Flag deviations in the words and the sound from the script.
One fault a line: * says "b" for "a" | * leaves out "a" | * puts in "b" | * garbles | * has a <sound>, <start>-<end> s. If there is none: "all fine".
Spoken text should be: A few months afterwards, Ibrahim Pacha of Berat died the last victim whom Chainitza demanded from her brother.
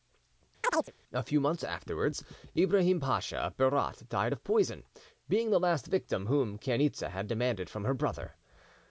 * has a chirp, 0.6-0.9 s
* puts in "of poison being"
* puts in "had"